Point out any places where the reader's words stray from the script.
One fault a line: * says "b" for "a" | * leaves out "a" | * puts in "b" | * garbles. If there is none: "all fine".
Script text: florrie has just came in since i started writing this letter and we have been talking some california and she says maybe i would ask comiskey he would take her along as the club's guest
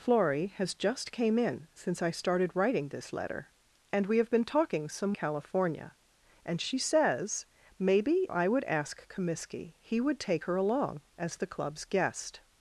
all fine